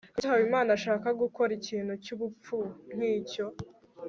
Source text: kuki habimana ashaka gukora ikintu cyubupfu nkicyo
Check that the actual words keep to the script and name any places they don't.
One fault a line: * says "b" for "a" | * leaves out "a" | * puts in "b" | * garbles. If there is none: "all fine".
all fine